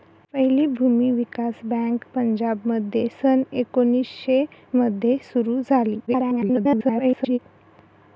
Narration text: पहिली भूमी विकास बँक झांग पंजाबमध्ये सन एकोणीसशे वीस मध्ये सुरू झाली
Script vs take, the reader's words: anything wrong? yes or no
yes